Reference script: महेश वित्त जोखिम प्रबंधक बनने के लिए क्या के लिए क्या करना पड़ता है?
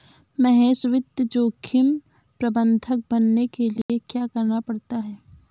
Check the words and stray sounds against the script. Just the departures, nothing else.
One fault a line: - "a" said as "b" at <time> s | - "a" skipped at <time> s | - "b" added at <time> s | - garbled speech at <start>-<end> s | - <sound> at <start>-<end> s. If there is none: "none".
- dropout at 3.8-3.9 s
- "के लिए क्या" skipped at 4.3 s